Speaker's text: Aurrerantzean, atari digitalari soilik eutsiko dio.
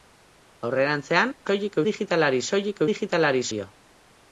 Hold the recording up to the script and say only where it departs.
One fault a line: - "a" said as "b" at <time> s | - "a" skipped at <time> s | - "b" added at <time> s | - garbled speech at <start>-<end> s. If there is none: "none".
- "atari" said as "soilik" at 1.5 s
- "eutsiko" said as "digitalari" at 2.9 s